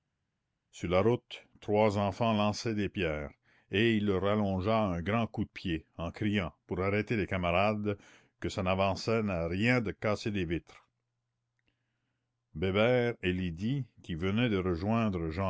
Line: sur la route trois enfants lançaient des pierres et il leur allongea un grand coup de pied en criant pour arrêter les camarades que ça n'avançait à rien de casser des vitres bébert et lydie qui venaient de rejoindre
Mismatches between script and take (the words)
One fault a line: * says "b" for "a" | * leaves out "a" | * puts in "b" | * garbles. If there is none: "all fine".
all fine